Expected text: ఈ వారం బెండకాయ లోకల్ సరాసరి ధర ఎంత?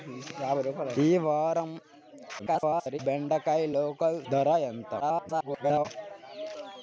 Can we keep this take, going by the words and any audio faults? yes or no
no